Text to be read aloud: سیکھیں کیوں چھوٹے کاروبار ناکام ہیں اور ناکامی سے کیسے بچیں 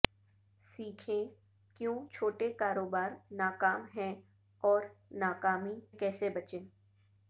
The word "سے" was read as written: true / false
false